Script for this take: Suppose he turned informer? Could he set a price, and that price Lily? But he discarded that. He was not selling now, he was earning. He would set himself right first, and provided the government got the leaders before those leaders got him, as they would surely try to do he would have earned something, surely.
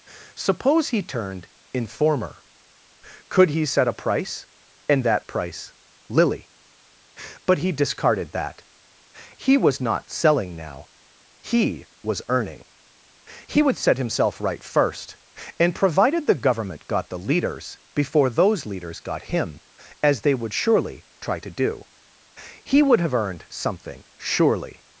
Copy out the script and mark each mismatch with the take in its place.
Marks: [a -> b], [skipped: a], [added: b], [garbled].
Suppose he turned informer? Could he set a price, and that price Lily? But he discarded that. He was not selling now, he was earning. He would set himself right first, and provided the government got the leaders before those leaders got him, as they would surely try to do he would have earned something, surely.